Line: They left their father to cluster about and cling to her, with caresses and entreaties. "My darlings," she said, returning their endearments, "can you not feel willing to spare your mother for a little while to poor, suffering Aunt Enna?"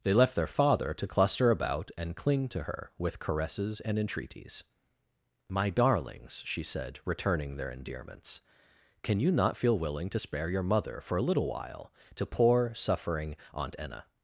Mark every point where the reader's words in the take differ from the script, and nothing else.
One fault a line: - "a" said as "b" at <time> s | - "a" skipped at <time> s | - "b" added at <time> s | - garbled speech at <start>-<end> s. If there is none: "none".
none